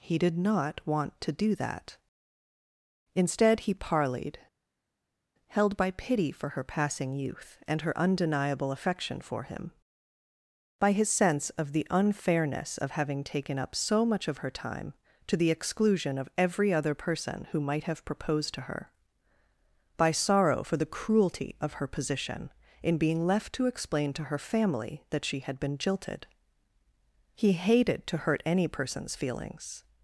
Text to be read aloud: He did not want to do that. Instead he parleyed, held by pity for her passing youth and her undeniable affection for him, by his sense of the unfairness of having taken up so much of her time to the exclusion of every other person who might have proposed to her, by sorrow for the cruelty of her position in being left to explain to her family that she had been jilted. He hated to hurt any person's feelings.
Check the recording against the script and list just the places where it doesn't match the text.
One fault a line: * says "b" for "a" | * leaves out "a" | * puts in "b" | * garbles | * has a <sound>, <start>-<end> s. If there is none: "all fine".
all fine